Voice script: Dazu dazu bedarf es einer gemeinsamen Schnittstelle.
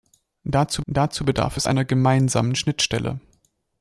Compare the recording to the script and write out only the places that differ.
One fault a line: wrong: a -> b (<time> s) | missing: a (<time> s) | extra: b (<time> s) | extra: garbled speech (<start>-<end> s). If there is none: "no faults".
no faults